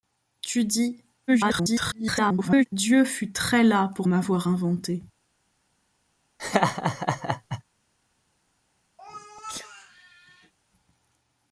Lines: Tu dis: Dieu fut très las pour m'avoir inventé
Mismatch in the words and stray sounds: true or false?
true